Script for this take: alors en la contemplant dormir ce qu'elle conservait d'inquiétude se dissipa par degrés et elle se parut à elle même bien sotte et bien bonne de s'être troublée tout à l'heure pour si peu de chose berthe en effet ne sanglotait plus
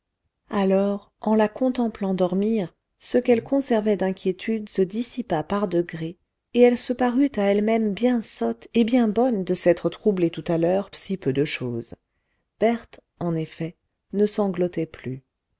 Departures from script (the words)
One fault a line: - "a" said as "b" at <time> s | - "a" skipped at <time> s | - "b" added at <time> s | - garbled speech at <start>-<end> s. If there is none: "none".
- "pour" skipped at 10.9 s